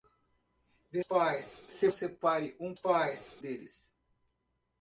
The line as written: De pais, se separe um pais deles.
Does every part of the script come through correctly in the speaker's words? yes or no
yes